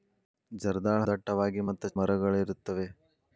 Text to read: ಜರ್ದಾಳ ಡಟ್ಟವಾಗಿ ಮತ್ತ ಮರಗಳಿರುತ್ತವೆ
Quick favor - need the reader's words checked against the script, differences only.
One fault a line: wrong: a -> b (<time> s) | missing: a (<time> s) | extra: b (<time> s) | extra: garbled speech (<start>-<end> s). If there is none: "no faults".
no faults